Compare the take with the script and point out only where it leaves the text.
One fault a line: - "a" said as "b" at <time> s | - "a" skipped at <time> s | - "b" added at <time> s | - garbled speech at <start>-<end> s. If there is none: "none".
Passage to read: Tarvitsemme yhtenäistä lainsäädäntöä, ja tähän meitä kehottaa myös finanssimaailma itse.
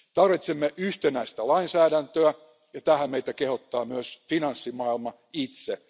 none